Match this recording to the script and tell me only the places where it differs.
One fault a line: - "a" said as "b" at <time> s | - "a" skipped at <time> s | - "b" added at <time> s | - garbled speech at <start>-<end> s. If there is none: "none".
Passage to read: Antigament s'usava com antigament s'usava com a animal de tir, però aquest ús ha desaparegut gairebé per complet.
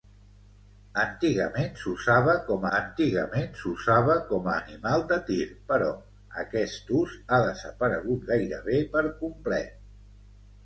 none